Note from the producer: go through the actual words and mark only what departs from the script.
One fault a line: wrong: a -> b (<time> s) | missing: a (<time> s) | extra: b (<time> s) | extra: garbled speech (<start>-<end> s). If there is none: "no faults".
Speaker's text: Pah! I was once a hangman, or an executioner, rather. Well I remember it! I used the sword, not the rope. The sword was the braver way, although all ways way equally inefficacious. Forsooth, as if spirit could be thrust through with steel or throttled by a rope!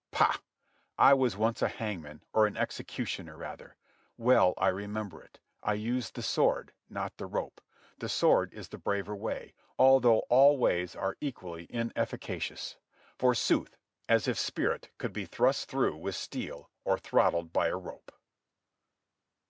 wrong: was -> is (8.5 s)
wrong: way -> are (10.9 s)